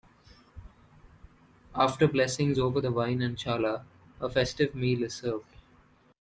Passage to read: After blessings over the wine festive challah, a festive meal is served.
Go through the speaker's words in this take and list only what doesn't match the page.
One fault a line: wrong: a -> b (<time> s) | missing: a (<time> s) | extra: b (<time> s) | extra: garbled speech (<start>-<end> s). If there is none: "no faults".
wrong: festive -> and (3.2 s)